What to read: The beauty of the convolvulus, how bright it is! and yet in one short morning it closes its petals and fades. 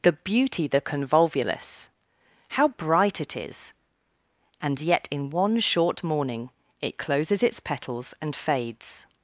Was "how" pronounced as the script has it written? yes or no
yes